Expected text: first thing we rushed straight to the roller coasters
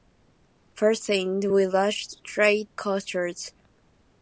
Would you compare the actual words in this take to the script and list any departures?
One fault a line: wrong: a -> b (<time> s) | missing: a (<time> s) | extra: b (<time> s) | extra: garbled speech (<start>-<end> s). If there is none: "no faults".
missing: to the roller (2.7 s)